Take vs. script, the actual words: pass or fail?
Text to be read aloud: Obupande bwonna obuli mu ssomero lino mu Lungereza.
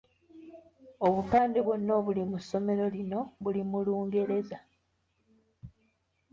fail